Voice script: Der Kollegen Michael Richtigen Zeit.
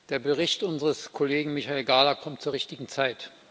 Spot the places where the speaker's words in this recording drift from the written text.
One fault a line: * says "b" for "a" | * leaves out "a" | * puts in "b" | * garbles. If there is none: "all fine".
* puts in "Bericht unseres"
* puts in "Gahler kommt zur"